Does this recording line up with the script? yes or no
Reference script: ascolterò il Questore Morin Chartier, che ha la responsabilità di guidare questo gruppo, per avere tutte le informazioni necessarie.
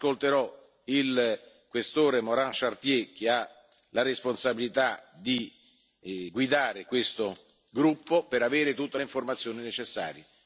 yes